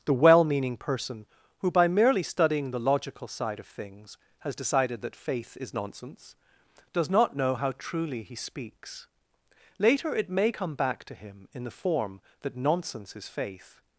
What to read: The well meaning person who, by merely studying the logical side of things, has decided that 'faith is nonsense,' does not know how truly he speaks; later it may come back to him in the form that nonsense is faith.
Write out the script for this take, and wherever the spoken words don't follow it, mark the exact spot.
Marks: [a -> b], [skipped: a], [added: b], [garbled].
The well meaning person who, by merely studying the logical side of things, has decided that 'faith is nonsense,' does not know how truly he speaks; later it may come back to him in the form that nonsense is faith.